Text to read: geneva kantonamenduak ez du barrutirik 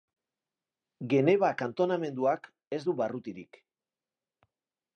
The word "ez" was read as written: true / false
true